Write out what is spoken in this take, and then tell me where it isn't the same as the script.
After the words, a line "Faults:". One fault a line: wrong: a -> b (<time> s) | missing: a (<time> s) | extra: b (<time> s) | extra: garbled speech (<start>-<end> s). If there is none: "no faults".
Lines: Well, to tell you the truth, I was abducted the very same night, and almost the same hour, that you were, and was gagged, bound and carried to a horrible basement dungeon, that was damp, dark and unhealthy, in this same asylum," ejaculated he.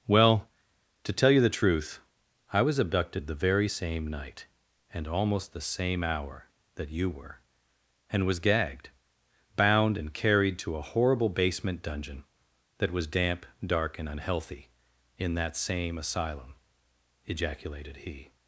Well, to tell you the truth, I was abducted the very same night, and almost the same hour, that you were, and was gagged, bound and carried to a horrible basement dungeon, that was damp, dark and unhealthy, in that same asylum," ejaculated he.
Faults:
wrong: this -> that (15.3 s)